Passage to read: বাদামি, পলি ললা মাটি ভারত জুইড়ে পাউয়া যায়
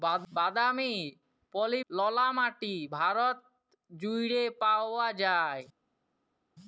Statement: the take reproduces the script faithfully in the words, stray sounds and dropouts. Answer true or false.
true